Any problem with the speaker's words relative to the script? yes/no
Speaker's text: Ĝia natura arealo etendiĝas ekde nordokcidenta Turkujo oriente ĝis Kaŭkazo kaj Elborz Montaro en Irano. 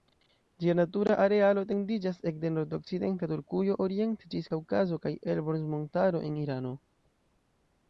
no